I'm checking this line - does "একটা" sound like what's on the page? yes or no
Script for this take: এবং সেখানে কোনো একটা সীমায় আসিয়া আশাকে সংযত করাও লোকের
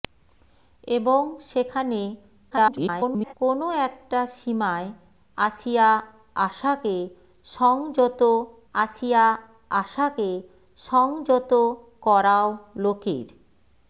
yes